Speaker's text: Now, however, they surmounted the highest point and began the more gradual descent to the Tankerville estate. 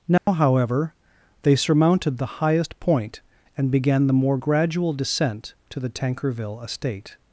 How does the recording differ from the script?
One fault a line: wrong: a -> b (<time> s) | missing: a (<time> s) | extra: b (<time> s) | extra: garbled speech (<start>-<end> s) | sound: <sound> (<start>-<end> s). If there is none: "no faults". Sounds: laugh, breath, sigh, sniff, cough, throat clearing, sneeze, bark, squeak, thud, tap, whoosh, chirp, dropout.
sound: dropout (0.2-0.3 s)